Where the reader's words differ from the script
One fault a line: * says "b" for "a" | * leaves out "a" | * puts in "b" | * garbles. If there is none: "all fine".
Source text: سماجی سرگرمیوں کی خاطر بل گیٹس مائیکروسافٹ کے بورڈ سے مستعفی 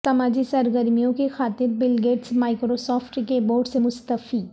all fine